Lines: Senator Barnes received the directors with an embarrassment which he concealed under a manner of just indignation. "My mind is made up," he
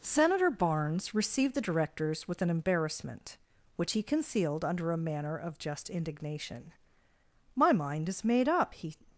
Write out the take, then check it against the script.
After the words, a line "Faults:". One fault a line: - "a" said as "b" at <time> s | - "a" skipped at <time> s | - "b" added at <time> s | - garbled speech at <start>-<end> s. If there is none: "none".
Senator Barnes received the directors with an embarrassment which he concealed under a manner of just indignation. "My mind is made up," he
Faults:
none